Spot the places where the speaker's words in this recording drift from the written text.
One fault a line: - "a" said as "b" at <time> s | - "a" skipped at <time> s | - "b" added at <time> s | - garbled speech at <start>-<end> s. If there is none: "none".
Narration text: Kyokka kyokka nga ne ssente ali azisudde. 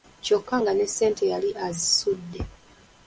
- "kyokka" skipped at 0.6 s
- "ali" said as "yali" at 1.3 s